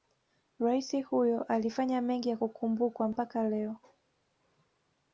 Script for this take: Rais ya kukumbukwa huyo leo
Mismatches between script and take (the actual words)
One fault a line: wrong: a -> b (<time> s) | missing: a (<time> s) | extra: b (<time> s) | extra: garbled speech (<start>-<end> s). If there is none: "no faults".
extra: huyo alifanya mengi (1.1 s)
wrong: huyo -> mpaka (3.1 s)